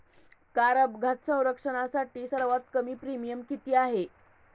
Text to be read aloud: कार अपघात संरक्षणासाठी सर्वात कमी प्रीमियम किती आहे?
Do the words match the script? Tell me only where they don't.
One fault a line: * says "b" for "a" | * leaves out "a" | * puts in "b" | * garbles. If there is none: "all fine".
all fine